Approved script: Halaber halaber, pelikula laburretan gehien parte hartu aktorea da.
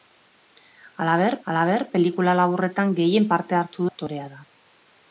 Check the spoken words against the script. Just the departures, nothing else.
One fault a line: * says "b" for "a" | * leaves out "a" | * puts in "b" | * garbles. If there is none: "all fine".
all fine